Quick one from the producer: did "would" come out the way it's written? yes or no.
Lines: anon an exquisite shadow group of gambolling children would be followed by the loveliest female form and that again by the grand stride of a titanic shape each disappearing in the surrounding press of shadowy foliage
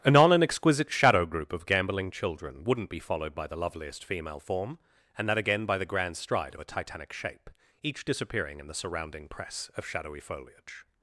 no